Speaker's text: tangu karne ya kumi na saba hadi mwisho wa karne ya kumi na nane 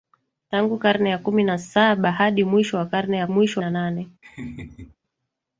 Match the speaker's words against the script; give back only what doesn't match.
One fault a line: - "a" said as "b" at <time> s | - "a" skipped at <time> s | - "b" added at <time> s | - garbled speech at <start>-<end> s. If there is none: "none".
- "kumi" said as "mwisho" at 3.3 s